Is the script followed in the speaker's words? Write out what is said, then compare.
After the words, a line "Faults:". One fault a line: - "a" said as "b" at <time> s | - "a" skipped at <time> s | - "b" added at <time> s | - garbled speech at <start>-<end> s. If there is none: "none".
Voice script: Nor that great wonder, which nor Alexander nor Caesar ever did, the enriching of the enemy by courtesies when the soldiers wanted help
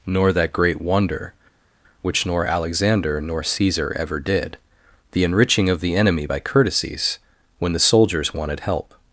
Nor that great wonder, which nor Alexander nor Caesar ever did, the enriching of the enemy by courtesies when the soldiers wanted help
Faults:
none